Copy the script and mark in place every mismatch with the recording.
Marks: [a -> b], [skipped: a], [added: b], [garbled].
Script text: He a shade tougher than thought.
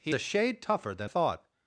He a shade tougher than thought.